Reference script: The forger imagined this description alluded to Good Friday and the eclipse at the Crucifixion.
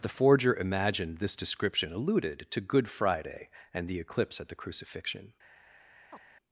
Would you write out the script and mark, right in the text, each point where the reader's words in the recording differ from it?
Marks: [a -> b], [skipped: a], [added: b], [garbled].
The forger imagined this description alluded to Good Friday and the eclipse at the Crucifixion.